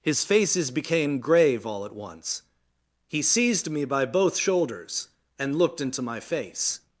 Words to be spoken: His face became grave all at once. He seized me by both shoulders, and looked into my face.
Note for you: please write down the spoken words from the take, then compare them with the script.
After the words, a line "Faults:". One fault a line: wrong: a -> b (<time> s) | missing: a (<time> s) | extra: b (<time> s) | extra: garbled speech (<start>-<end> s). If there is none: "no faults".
His faces became grave all at once. He seized me by both shoulders, and looked into my face.
Faults:
wrong: face -> faces (0.2 s)